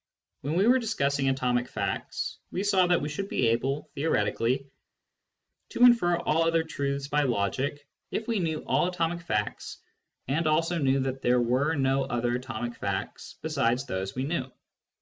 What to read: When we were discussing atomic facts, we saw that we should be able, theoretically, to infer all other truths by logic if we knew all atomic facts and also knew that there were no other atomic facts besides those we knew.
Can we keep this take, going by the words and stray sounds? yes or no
yes